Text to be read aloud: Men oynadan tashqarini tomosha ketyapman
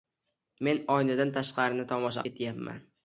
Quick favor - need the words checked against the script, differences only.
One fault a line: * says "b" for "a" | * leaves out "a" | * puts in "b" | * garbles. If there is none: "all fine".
all fine